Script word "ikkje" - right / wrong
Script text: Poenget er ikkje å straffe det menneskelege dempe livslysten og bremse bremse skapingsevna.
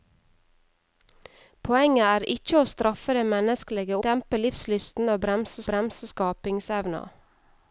right